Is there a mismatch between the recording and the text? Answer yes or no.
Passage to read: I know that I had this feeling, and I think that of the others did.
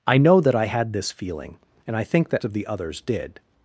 no